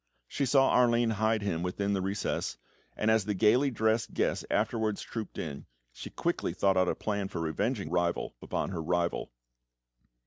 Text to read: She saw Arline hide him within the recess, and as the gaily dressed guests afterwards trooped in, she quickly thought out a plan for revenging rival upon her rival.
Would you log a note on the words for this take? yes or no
no